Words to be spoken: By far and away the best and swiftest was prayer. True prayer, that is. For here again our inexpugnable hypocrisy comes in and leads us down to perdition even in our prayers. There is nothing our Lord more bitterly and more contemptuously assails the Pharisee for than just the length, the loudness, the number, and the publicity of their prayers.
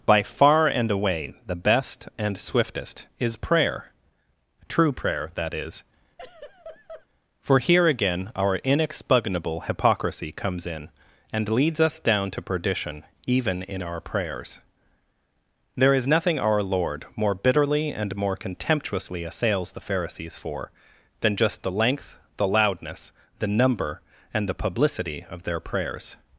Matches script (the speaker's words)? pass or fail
fail